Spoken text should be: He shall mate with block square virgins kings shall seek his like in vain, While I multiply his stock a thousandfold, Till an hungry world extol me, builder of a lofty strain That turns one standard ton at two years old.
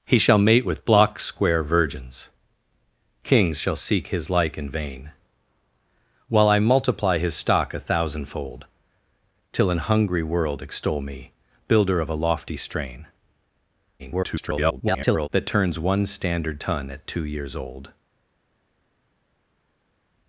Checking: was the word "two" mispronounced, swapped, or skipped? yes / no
no